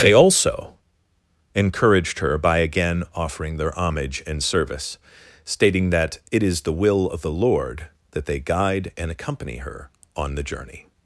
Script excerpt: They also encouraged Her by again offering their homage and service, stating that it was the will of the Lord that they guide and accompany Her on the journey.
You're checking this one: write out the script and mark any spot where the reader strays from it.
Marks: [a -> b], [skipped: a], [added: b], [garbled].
They also encouraged Her by again offering their homage and service, stating that it [was -> is] the will of the Lord that they guide and accompany Her on the journey.